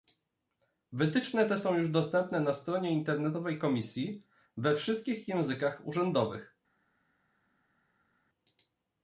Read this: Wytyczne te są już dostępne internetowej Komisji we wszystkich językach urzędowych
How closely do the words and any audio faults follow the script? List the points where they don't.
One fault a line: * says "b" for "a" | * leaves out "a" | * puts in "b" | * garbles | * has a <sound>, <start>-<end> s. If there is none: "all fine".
* puts in "na stronie"